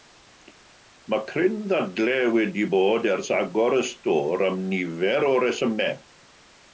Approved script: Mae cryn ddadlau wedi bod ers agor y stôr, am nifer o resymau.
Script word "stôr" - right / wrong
right